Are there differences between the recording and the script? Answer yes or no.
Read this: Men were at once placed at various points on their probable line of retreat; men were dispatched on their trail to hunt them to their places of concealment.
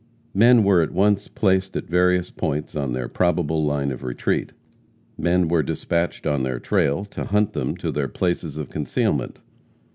no